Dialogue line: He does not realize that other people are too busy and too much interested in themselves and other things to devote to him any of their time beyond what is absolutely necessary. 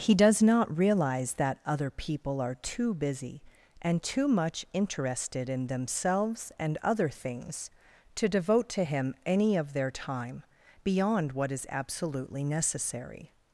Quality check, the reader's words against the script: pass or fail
pass